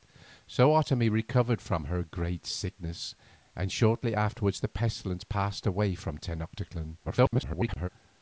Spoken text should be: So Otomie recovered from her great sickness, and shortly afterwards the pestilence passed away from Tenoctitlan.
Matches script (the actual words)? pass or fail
fail